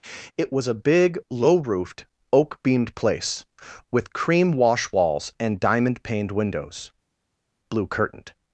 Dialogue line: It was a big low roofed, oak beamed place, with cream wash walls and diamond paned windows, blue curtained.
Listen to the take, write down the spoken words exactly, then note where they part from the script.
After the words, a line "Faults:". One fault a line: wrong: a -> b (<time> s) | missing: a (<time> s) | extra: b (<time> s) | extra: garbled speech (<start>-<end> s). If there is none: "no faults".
It was a big low roofed, oak beamed place, with cream wash walls and diamond paned windows, blue curtained.
Faults:
no faults